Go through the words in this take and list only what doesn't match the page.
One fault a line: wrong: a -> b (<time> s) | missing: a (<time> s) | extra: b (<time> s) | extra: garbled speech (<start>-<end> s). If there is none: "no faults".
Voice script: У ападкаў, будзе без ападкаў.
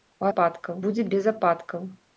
no faults